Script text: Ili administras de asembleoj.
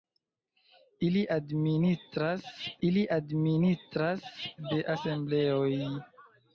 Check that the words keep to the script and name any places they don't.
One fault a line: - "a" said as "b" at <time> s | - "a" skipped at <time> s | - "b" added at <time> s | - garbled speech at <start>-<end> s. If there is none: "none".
- "ili administras" added at 2.9 s